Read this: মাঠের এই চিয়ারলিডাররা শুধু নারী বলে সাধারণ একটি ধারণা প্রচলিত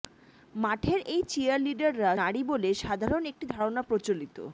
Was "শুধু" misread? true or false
true